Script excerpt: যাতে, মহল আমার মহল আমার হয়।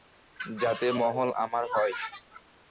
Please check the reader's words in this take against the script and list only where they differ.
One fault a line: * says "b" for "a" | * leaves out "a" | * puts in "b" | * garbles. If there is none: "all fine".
* leaves out "মহল আমার"